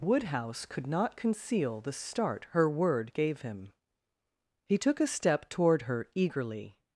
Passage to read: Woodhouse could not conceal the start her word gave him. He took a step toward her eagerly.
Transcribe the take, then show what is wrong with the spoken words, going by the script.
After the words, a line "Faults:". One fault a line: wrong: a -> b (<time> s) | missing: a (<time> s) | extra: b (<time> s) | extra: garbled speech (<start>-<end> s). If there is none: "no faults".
Woodhouse could not conceal the start her word gave him. He took a step toward her eagerly.
Faults:
no faults